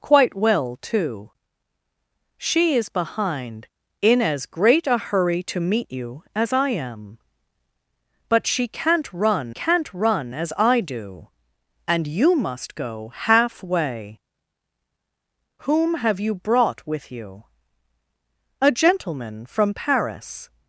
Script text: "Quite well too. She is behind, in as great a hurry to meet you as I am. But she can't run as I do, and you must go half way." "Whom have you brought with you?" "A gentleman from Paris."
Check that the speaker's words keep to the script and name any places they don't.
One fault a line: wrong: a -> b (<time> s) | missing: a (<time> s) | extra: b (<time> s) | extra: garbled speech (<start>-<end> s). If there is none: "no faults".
extra: can't run (9.5 s)